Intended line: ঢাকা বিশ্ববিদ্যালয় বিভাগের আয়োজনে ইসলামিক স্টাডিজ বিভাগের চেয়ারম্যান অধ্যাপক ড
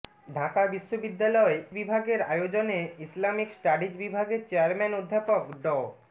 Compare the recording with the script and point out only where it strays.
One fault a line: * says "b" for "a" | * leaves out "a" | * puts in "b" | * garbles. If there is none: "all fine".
all fine